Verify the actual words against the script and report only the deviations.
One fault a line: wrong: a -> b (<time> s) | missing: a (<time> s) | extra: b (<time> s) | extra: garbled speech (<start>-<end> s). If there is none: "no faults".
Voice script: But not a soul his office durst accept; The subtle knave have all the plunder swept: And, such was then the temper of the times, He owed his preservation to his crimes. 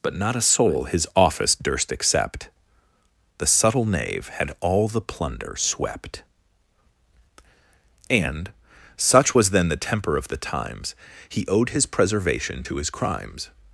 wrong: have -> had (4.3 s)